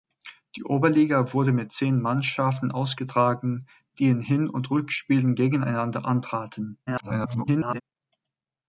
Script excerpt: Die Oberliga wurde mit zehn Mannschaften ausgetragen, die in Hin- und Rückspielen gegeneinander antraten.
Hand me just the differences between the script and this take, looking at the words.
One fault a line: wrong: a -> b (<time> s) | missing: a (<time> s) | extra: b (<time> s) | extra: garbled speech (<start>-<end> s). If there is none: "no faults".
extra: garbled speech (6.9-7.8 s)